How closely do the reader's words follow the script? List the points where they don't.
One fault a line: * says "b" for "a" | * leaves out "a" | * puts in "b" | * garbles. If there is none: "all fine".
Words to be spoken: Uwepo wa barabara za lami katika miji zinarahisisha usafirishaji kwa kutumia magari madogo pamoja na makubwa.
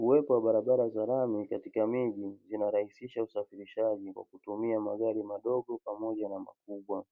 all fine